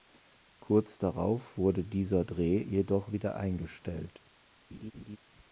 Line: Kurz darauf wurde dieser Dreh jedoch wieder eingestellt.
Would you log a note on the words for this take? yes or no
no